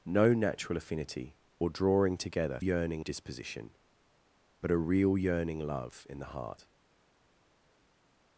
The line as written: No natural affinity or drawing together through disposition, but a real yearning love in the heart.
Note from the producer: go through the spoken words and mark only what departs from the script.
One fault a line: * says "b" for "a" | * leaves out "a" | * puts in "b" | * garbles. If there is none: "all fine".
* says "yearning" for "through"